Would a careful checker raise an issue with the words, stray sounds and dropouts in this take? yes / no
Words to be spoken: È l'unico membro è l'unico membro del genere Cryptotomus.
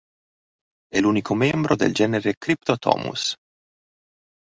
yes